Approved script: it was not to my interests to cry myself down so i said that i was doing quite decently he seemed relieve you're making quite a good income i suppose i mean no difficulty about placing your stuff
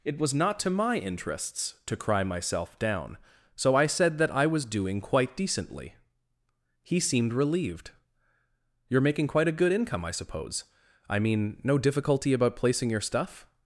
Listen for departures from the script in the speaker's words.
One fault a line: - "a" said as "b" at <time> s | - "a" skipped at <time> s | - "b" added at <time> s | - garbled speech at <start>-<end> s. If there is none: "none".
- "relieve" said as "relieved" at 7.3 s